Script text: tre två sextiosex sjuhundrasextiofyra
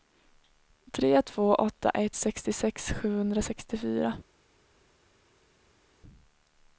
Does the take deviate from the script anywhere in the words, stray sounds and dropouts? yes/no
yes